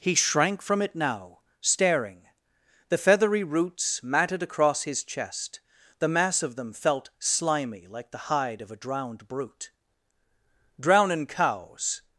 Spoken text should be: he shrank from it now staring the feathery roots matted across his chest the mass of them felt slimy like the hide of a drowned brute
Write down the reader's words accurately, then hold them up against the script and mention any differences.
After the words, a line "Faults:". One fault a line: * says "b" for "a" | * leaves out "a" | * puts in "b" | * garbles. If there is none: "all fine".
he shrank from it now staring the feathery roots matted across his chest the mass of them felt slimy like the hide of a drowned brute drownin cows
Faults:
* puts in "drownin cows"